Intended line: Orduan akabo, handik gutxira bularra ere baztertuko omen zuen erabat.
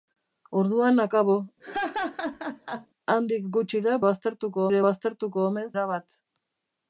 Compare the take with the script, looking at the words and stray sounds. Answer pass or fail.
fail